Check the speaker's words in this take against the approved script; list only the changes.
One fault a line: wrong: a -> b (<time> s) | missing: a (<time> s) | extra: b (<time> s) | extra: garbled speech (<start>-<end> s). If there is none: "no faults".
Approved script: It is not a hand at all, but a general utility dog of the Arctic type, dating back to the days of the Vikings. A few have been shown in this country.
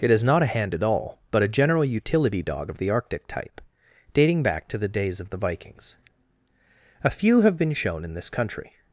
no faults